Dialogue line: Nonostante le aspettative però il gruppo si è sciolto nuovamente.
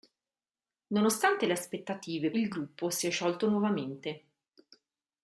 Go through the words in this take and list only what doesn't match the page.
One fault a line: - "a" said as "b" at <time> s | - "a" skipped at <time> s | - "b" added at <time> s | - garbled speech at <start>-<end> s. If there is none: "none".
- "però" skipped at 2.3 s